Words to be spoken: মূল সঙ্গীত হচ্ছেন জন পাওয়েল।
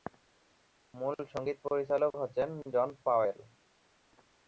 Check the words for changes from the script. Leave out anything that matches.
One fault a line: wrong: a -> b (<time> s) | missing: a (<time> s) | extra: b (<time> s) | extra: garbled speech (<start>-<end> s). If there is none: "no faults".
extra: পরিচালক (1.6 s)